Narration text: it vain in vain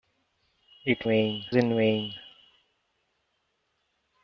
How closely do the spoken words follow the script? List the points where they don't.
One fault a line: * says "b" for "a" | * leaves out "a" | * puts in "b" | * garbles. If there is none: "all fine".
all fine